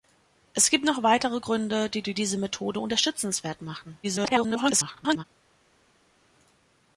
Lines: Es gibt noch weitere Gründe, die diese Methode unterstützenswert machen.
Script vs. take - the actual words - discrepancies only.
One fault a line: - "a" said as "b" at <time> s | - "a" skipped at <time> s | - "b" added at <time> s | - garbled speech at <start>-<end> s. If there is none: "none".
- "die" added at 2.0 s
- garbled speech at 4.0-5.2 s